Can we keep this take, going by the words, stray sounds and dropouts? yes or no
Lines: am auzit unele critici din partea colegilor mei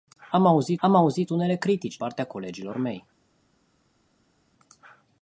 no